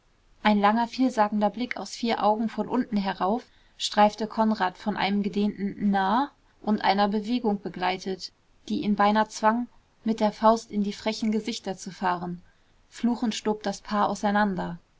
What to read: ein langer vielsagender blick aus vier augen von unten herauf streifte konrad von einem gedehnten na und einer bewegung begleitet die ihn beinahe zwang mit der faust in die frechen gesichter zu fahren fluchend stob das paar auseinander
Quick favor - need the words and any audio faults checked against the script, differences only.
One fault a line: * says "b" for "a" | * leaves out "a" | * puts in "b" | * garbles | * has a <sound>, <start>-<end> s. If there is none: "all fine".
all fine